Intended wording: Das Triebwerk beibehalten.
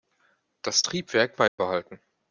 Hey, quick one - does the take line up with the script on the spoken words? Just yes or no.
yes